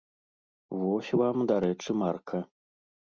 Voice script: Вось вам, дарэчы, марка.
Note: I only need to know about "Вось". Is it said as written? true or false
true